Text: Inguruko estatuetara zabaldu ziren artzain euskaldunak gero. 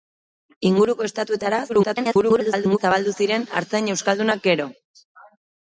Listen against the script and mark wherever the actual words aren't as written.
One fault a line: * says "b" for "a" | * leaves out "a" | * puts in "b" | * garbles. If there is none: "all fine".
* garbles